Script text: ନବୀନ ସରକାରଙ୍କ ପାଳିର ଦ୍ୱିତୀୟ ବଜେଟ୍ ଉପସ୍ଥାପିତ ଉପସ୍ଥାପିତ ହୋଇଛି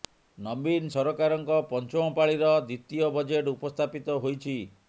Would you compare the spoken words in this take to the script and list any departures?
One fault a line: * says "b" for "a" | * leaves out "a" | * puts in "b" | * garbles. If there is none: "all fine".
* puts in "ପଞ୍ଚମ"
* leaves out "ଉପସ୍ଥାପିତ"